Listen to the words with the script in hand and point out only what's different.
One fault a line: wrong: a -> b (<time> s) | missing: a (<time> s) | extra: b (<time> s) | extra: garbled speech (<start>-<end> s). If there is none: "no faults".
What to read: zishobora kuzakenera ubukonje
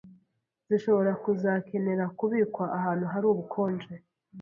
extra: kubikwa ahantu hari (2.2 s)